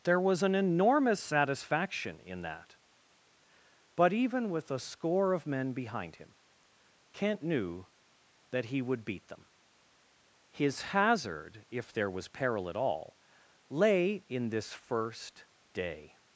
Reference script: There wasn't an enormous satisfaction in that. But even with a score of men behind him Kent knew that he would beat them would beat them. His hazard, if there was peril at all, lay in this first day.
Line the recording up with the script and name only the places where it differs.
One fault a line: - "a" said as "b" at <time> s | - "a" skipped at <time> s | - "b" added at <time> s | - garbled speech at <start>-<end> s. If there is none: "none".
- "wasn't" said as "was" at 0.2 s
- "would beat them" skipped at 9.5 s